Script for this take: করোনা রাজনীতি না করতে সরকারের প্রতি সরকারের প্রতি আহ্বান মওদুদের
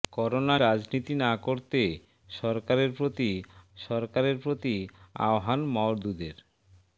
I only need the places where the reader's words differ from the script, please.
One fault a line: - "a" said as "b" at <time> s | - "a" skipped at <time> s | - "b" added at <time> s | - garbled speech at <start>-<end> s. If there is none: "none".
none